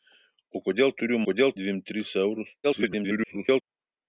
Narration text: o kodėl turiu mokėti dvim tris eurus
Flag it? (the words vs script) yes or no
yes